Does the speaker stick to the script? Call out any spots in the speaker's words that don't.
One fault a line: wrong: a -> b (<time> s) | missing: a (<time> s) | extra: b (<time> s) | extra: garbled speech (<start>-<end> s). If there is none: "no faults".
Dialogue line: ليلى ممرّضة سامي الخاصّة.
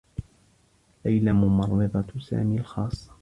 no faults